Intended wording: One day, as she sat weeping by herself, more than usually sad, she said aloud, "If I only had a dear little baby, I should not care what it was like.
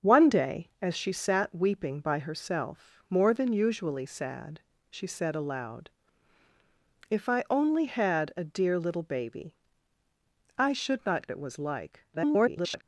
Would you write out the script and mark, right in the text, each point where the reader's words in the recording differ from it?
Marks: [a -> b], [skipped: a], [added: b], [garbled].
One day, as she sat weeping by herself, more than usually sad, she said aloud, "If I only had a dear little baby, I should not [skipped: care what] it was like. [garbled]